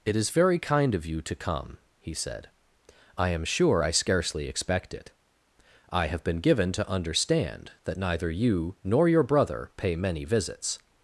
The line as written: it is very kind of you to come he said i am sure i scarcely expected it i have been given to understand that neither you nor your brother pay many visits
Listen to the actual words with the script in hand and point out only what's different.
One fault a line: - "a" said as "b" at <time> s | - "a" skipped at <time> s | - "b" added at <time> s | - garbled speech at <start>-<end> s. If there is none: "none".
- "expected" said as "expect" at 4.5 s